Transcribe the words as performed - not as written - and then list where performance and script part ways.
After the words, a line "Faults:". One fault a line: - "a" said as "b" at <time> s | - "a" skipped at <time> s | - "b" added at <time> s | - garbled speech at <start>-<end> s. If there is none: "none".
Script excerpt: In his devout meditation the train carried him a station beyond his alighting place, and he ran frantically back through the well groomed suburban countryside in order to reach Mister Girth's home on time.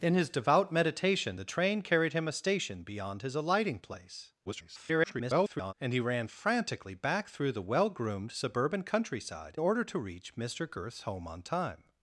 In his devout meditation the train carried him a station beyond his alighting place, [garbled] and he ran frantically back through the well groomed suburban countryside order to reach Mister Girth's home on time.
Faults:
- garbled speech at 4.5-5.7 s
- "in" skipped at 9.6 s